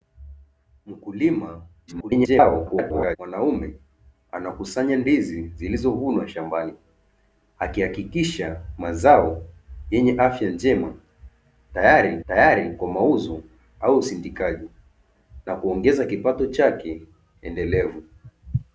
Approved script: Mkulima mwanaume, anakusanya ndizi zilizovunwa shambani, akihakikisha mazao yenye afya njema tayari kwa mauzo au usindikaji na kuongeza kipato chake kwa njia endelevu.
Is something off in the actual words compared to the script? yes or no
yes